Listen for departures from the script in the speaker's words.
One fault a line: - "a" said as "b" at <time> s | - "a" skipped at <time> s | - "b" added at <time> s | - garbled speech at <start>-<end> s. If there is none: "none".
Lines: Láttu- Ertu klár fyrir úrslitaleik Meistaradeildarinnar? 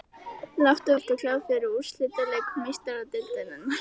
none